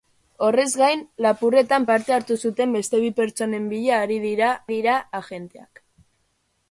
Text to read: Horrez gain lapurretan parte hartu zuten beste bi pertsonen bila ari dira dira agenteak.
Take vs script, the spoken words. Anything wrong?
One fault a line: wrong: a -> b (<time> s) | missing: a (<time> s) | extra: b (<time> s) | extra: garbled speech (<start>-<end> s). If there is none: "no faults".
no faults